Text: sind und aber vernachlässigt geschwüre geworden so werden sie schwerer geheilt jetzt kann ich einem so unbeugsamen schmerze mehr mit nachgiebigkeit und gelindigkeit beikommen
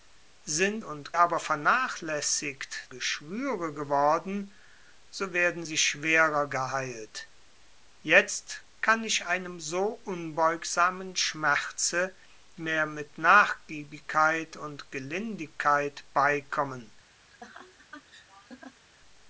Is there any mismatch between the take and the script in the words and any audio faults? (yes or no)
yes